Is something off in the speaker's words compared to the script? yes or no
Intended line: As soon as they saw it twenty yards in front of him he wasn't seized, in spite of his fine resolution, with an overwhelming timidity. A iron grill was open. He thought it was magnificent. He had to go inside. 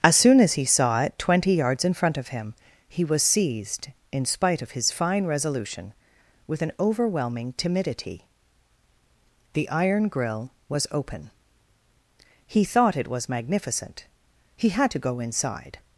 yes